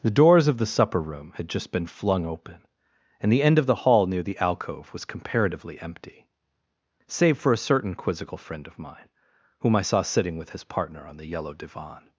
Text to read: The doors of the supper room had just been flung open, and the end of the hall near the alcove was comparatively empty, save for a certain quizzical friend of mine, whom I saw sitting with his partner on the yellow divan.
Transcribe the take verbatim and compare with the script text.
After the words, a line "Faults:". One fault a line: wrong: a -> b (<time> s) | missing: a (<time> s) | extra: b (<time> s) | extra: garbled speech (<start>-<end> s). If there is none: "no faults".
The doors of the supper room had just been flung open, and the end of the hall near the alcove was comparatively empty, save for a certain quizzical friend of mine, whom I saw sitting with his partner on the yellow divan.
Faults:
no faults